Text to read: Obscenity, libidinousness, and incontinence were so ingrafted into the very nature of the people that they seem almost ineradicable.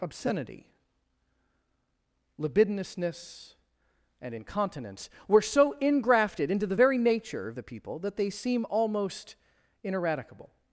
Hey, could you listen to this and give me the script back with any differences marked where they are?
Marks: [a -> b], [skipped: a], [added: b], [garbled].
Obscenity, libidinousness, and incontinence were so ingrafted into the very nature of the people that they seem almost ineradicable.